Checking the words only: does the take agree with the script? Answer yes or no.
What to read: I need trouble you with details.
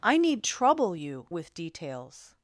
yes